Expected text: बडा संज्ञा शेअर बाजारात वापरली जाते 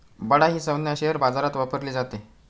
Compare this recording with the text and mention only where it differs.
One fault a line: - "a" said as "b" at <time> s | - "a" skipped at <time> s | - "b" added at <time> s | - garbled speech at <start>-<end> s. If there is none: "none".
- "ही" added at 0.5 s